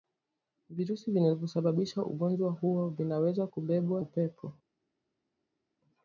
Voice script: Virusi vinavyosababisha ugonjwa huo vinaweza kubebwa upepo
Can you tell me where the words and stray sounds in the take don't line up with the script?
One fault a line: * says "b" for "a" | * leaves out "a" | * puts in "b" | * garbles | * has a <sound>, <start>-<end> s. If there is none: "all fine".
all fine